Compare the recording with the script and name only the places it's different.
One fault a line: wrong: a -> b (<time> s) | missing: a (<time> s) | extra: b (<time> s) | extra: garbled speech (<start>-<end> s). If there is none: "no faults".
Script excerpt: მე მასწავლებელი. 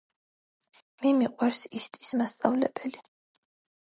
extra: მიყვარს ისტის (1.2 s)